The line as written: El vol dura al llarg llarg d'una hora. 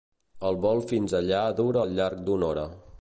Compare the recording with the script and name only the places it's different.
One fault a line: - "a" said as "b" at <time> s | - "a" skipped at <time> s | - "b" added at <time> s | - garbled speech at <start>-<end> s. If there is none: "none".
- "fins allà" added at 0.9 s
- "llarg" skipped at 2.2 s